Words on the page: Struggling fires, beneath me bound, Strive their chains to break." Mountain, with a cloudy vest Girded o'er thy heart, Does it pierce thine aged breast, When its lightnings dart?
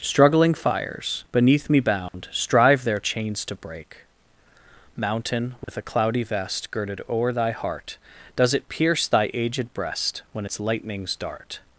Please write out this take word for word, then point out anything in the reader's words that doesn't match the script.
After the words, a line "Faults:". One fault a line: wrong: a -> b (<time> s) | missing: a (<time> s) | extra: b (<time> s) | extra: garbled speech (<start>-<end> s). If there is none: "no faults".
Struggling fires, beneath me bound, Strive their chains to break." Mountain, with a cloudy vest Girded o'er thy heart, Does it pierce thy aged breast, When its lightnings dart?
Faults:
wrong: thine -> thy (9.1 s)